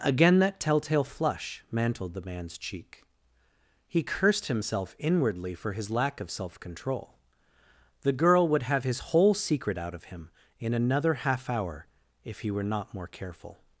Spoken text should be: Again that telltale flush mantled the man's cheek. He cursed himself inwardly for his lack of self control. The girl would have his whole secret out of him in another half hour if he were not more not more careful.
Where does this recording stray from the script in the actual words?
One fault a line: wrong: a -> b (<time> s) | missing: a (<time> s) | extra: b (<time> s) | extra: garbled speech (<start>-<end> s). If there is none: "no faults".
missing: not more (13.1 s)